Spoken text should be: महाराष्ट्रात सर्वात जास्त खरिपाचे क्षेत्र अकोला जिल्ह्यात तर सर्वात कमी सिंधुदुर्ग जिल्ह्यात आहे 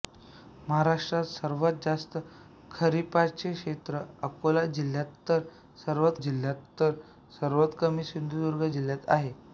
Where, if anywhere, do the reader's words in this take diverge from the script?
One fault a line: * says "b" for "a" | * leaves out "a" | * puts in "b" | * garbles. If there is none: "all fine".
* puts in "जिल्ह्यात तर सर्वात"